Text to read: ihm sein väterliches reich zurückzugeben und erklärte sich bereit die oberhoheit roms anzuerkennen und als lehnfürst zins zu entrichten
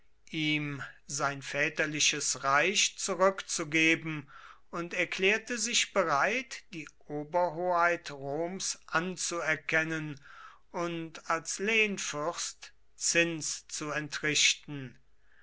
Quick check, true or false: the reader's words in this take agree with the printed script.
true